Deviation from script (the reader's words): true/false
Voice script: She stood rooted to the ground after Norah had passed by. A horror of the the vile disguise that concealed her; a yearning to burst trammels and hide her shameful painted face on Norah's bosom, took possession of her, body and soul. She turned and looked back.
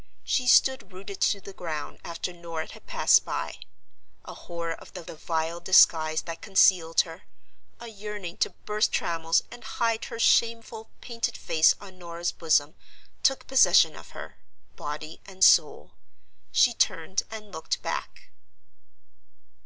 false